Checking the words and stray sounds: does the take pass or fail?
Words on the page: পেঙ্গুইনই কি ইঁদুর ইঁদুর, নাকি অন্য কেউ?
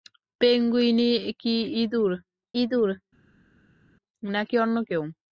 pass